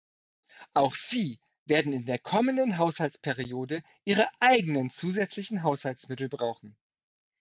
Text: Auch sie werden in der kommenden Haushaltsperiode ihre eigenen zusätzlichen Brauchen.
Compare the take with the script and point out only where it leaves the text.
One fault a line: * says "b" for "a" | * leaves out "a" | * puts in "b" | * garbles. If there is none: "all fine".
* puts in "Haushaltsmittel"